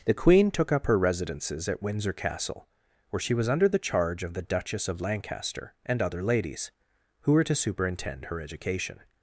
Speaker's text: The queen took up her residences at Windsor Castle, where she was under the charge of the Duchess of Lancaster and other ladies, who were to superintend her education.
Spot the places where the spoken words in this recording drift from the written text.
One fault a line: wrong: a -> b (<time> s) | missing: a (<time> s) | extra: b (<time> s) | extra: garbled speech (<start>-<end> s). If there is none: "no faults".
no faults